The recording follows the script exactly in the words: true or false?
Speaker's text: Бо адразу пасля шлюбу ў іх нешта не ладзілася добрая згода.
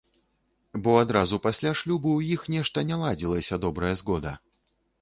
true